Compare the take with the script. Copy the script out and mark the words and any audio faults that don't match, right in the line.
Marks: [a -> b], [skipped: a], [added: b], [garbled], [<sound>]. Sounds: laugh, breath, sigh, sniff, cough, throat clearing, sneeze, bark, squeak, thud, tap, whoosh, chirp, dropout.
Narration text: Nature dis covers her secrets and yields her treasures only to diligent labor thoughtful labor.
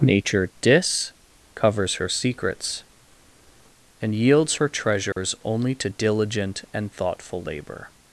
Nature dis covers her secrets and yields her treasures [dropout] only to diligent [labor -> and] thoughtful labor.